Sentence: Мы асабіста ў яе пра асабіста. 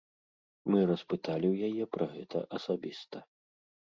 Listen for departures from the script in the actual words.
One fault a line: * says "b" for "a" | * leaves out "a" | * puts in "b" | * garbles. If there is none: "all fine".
* says "распыталі" for "асабіста"
* puts in "гэта"